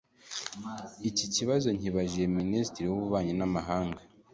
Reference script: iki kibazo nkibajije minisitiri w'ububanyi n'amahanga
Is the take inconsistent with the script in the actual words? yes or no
no